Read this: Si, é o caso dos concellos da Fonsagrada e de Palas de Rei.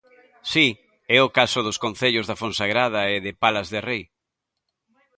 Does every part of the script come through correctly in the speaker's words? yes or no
yes